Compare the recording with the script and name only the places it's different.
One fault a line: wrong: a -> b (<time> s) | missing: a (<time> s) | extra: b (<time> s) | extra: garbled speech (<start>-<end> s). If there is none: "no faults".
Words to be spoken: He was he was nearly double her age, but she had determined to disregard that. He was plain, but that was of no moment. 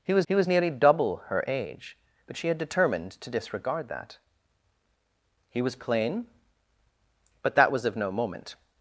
no faults